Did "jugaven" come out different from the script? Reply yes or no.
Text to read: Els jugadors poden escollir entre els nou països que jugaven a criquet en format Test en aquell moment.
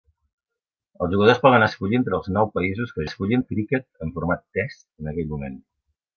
yes